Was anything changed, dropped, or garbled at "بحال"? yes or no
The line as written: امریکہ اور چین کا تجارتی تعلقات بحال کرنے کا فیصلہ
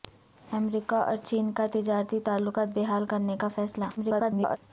no